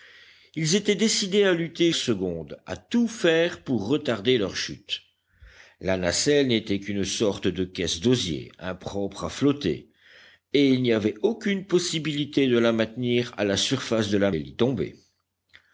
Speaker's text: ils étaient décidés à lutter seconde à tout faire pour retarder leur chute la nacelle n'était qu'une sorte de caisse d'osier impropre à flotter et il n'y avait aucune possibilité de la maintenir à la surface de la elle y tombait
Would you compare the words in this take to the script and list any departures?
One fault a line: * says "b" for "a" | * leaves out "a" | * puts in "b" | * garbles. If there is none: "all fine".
all fine